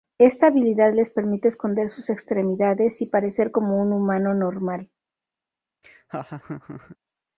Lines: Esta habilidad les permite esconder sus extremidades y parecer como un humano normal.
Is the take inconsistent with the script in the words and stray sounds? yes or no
yes